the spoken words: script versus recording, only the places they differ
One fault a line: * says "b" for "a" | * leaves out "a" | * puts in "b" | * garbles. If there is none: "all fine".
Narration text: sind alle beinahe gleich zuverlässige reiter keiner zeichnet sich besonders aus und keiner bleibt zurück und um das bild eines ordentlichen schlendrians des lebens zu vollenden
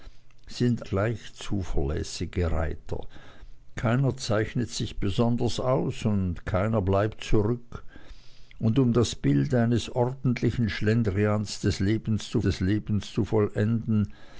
* leaves out "alle beinahe"
* puts in "des lebens zu"